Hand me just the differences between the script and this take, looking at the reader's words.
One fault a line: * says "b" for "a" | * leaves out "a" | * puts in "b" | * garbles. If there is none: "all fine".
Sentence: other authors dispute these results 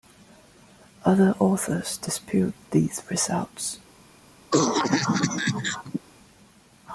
all fine